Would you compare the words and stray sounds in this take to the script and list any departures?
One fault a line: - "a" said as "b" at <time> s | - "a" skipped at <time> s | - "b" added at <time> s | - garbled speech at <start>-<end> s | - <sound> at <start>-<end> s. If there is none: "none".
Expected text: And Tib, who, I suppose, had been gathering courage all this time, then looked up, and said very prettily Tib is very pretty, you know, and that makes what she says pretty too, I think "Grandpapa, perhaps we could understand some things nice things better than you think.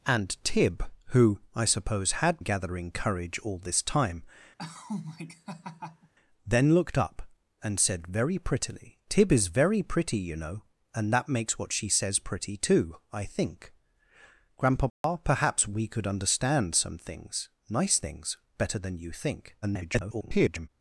- "been" skipped at 2.4 s
- laugh at 4.6-6.1 s
- dropout at 14.9-15.0 s
- garbled speech at 19.6-20.7 s